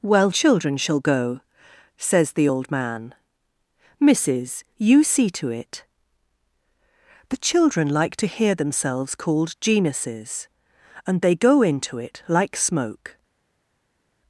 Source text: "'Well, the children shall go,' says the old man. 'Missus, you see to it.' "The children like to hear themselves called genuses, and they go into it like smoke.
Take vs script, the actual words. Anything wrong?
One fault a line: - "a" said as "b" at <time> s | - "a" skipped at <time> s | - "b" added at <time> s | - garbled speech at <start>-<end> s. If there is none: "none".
- "the" skipped at 0.3 s